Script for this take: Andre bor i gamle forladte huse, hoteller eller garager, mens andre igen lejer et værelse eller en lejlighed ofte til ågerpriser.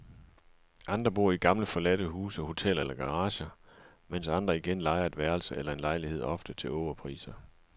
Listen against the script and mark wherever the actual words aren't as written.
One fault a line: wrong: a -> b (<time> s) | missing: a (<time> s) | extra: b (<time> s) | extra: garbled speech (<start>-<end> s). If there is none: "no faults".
no faults